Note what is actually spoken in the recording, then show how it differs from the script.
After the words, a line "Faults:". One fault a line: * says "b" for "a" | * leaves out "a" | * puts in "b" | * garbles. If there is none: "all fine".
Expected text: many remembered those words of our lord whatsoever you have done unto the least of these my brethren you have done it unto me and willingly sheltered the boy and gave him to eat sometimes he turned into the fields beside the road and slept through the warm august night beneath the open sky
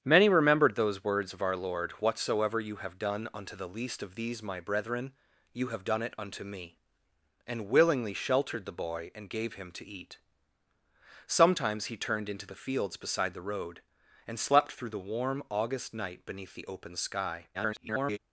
many remembered those words of our lord whatsoever you have done unto the least of these my brethren you have done it unto me and willingly sheltered the boy and gave him to eat sometimes he turned into the fields beside the road and slept through the warm august night beneath the open sky [garbled]
Faults:
* garbles